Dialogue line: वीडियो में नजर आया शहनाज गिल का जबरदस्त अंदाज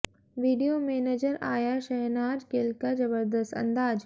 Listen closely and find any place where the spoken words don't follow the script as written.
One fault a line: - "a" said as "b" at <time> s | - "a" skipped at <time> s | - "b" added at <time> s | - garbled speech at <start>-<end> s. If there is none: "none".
none